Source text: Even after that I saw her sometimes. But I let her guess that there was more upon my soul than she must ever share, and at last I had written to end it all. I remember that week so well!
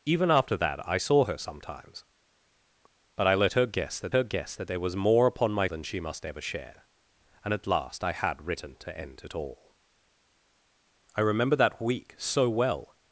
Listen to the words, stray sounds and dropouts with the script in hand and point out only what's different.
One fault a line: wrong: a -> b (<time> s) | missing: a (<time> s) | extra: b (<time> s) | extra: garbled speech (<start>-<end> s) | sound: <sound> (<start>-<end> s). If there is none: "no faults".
extra: her guess that (4.1 s)
missing: soul (5.7 s)